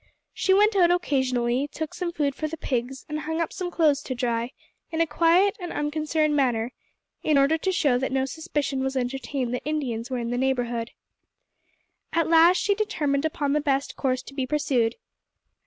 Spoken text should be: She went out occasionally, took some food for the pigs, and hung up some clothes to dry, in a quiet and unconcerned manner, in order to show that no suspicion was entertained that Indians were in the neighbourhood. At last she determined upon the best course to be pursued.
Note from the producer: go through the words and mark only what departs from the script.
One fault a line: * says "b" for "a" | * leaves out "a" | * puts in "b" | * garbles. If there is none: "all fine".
all fine